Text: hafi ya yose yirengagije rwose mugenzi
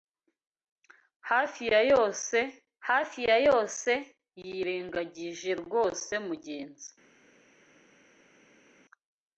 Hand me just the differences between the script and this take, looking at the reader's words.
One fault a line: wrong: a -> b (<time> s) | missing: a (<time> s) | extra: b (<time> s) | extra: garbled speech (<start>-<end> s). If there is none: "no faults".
extra: hafi ya yose (2.9 s)